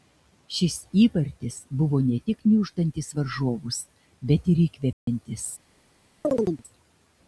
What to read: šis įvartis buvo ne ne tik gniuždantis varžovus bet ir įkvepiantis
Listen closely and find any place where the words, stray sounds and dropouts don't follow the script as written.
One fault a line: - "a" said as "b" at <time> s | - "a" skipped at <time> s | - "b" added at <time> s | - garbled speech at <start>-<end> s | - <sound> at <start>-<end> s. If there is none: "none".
- "ne" skipped at 2.2 s
- dropout at 4.9-5.1 s
- chirp at 6.2-6.6 s